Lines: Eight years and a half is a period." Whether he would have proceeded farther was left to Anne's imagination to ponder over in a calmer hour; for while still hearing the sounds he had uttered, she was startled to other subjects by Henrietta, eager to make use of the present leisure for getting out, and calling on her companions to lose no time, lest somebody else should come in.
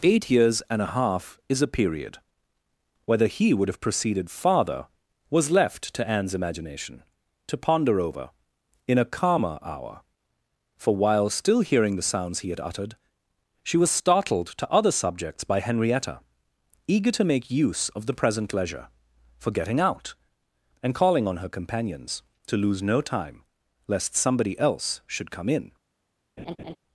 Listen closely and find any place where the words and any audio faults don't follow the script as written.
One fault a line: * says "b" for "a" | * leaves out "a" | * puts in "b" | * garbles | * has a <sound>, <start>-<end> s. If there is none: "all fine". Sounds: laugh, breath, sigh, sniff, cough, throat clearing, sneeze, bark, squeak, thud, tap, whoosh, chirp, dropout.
* has a laugh, 26.4-26.8 s